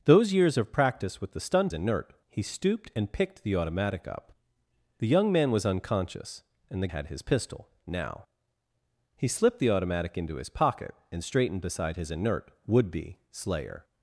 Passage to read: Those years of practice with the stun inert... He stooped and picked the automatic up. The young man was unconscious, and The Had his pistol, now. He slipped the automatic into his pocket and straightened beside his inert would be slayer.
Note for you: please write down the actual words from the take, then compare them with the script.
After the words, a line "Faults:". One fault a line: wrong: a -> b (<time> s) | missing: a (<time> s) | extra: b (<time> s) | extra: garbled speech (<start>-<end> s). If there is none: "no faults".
Those years of practice with the stun inert... He stooped and picked the automatic up. The young man was unconscious, and The Had his pistol, now. He slipped the automatic into his pocket and straightened beside his inert would be slayer.
Faults:
no faults